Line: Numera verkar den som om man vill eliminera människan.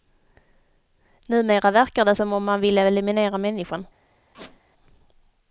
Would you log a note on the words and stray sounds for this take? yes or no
yes